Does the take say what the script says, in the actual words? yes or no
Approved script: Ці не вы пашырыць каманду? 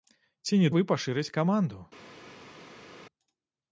yes